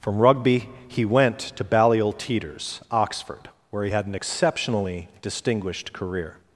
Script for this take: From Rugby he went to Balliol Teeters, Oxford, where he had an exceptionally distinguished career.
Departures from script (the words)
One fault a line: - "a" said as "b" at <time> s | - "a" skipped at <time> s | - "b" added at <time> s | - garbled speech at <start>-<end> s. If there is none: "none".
none